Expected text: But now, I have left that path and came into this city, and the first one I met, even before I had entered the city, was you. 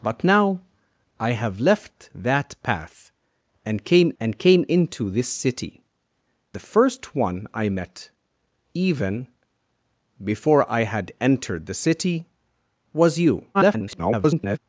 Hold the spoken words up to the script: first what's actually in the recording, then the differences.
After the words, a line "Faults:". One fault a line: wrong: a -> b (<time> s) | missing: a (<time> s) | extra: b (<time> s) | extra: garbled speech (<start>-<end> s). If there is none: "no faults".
But now, I have left that path and came and came into this city, the first one I met, even before I had entered the city, was you. [garbled]
Faults:
extra: and came (4.2 s)
missing: and (5.8 s)
extra: garbled speech (13.5-14.6 s)